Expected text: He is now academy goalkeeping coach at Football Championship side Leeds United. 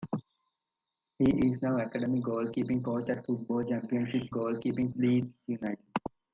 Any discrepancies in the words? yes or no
yes